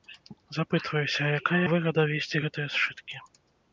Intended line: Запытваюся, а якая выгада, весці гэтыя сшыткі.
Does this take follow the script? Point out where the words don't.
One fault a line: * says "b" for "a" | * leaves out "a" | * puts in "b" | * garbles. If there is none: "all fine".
all fine